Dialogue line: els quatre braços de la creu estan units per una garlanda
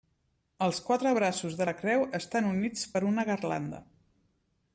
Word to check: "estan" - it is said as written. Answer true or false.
true